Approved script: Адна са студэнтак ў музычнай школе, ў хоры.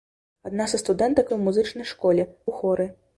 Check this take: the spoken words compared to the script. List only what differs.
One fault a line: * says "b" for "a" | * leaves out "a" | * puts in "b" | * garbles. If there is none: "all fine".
all fine